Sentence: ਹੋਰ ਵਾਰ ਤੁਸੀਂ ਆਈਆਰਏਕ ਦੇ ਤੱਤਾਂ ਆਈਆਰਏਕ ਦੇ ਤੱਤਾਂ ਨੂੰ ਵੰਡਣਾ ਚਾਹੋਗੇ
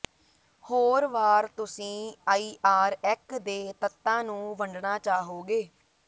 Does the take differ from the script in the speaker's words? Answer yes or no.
yes